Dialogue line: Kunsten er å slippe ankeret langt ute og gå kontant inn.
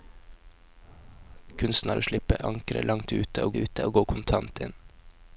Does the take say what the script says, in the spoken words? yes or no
no